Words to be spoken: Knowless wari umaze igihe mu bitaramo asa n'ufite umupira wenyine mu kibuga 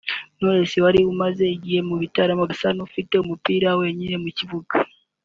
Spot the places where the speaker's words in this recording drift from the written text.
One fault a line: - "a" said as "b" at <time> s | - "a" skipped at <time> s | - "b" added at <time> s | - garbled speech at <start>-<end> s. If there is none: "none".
none